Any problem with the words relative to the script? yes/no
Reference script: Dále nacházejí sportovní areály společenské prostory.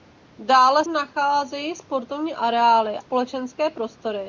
no